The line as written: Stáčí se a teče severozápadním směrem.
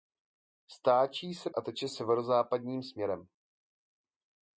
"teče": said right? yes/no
yes